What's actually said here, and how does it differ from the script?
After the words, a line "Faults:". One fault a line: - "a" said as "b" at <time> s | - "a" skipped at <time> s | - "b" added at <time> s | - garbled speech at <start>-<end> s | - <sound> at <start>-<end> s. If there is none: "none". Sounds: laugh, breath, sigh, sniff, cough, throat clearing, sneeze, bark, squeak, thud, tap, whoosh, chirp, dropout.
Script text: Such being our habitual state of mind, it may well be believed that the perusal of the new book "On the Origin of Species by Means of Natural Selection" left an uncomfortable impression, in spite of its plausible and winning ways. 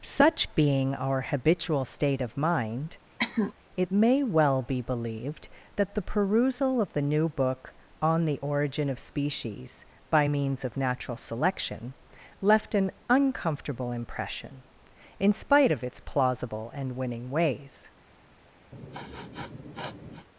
Such being our habitual state of mind, it may well be believed that the perusal of the new book "On the Origin of Species by Means of Natural Selection" left an uncomfortable impression, in spite of its plausible and winning ways.
Faults:
- cough at 3.2-3.5 s
- sniff at 18.7-20.3 s